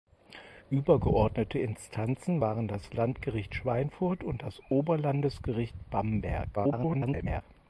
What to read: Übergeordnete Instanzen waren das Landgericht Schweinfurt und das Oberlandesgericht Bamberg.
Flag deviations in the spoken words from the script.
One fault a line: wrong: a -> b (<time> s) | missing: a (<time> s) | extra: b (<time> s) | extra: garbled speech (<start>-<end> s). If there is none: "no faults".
extra: garbled speech (6.6-7.4 s)